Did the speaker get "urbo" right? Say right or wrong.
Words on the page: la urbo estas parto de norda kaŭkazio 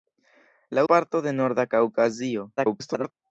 wrong